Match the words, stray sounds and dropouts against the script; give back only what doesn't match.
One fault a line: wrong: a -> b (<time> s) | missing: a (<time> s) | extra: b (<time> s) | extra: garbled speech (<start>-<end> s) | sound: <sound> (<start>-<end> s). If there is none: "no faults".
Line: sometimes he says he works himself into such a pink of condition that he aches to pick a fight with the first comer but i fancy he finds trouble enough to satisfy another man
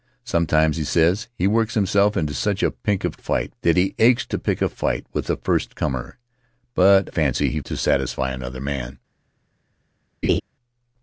wrong: condition -> fight (3.2 s)
missing: i (7.1 s)
missing: finds trouble enough (7.6 s)
sound: laugh (10.2-10.4 s)